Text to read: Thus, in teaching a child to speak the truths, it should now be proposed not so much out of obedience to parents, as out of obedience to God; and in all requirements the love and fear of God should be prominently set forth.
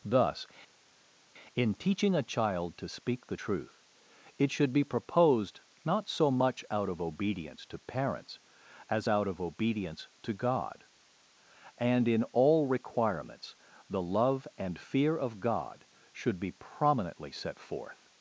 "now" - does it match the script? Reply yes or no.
no